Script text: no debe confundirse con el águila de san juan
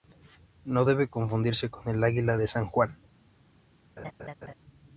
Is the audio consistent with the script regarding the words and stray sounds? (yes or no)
no